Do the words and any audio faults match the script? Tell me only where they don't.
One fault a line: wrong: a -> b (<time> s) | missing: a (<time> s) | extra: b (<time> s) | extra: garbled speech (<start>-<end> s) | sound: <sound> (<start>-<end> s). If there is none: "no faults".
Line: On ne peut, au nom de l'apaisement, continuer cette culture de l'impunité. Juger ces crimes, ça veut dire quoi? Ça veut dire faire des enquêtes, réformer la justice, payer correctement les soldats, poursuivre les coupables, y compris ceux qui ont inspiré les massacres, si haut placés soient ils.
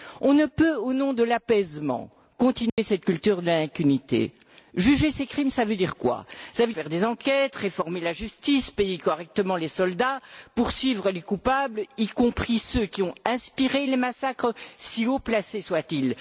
sound: dropout (2.7-2.8 s)
missing: dire (6.7 s)